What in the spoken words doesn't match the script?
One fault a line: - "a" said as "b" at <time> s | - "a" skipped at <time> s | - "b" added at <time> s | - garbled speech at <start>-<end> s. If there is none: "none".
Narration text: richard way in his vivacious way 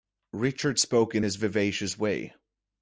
- "way" said as "spoke" at 0.8 s